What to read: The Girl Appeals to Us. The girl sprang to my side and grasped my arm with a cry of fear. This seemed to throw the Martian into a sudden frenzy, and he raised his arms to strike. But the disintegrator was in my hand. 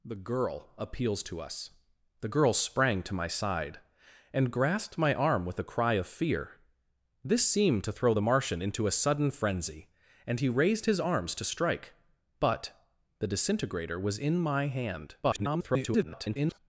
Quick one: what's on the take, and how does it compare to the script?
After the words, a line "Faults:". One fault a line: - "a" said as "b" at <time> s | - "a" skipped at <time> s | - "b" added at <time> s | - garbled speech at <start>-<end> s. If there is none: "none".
The Girl Appeals to Us. The girl sprang to my side and grasped my arm with a cry of fear. This seemed to throw the Martian into a sudden frenzy, and he raised his arms to strike. But the disintegrator was in my hand. [garbled]
Faults:
- garbled speech at 15.2-16.6 s